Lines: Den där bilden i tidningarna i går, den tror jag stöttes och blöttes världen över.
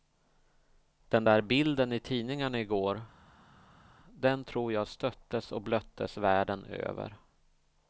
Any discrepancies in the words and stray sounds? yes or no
no